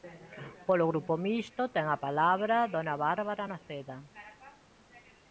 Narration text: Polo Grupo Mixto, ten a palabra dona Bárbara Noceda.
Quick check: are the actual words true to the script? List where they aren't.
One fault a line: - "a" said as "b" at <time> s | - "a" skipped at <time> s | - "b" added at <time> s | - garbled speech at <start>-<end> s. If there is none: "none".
none